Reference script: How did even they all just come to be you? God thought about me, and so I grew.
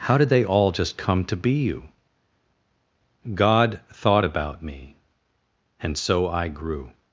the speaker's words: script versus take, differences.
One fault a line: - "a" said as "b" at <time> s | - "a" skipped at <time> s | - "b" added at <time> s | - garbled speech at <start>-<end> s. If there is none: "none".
- "even" skipped at 0.3 s